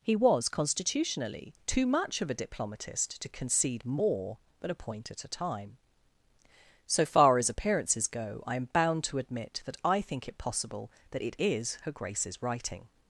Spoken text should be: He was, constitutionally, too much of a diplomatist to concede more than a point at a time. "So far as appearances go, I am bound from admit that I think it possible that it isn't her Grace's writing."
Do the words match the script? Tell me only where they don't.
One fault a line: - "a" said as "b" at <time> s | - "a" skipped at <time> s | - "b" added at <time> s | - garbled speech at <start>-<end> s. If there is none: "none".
- "from" said as "to" at 9.0 s
- "isn't" said as "is" at 11.4 s